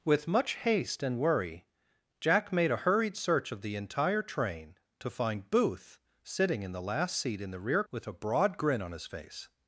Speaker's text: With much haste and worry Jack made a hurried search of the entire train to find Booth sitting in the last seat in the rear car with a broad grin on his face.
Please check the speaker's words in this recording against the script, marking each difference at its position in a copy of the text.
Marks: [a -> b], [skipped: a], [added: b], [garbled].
With much haste and worry Jack made a hurried search of the entire train to find Booth sitting in the last seat in the rear [skipped: car] with a broad grin on his face.